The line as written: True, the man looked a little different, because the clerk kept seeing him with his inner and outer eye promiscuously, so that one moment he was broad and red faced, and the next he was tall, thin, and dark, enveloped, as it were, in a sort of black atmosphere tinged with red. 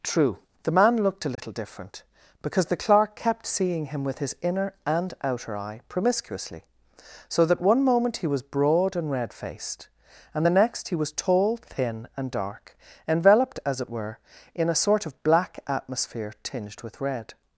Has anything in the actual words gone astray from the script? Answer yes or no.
no